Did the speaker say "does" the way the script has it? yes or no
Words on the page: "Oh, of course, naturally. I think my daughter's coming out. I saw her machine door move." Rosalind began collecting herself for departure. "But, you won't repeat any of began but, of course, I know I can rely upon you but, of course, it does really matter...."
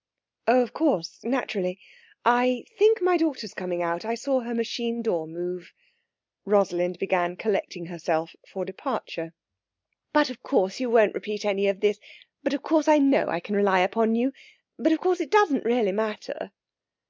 no